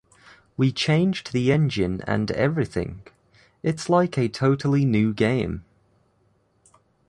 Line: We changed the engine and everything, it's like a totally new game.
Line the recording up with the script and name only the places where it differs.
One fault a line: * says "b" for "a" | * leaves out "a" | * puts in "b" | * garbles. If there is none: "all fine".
all fine